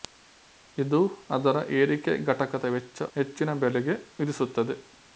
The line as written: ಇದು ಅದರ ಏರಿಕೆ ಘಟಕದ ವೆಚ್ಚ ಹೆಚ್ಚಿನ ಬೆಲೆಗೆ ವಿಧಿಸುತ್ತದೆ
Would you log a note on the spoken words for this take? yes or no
no